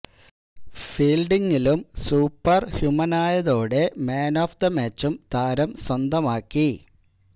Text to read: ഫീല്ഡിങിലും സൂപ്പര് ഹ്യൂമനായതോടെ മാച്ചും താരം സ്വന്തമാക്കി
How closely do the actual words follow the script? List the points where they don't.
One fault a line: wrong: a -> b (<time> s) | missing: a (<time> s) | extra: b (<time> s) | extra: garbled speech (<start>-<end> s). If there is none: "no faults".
extra: മാന് ഓഫ് ദ (4.1 s)